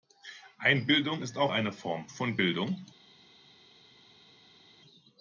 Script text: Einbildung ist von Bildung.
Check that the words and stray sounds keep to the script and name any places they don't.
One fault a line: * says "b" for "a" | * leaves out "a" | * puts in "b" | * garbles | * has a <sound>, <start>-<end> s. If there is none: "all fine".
* puts in "auch eine Form"